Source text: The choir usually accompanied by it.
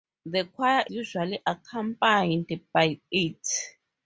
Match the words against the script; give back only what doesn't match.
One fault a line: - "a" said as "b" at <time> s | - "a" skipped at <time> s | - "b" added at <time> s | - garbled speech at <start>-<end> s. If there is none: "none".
none